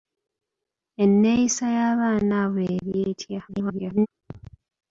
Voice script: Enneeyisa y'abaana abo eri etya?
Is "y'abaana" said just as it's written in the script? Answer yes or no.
yes